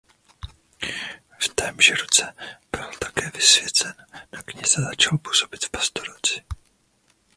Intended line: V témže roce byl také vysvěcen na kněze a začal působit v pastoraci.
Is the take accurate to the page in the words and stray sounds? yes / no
yes